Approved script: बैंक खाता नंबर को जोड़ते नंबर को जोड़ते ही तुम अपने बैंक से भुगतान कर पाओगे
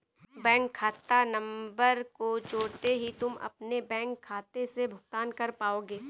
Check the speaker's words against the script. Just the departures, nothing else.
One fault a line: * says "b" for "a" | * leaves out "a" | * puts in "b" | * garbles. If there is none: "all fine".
* leaves out "नंबर को जोड़ते"
* puts in "खाते"